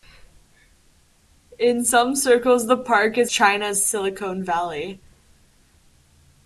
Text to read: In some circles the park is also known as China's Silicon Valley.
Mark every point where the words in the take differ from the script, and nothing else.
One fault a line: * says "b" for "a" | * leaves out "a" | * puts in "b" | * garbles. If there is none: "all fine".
* leaves out "also known as"